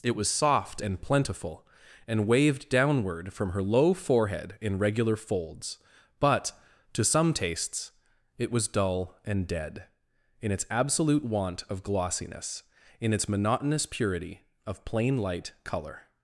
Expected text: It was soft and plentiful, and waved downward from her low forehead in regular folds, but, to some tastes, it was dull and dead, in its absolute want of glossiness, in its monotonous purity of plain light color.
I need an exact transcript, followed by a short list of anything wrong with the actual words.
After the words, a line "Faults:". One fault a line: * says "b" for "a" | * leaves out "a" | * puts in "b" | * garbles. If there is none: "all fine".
It was soft and plentiful, and waved downward from her low forehead in regular folds, but, to some tastes, it was dull and dead, in its absolute want of glossiness, in its monotonous purity of plain light color.
Faults:
all fine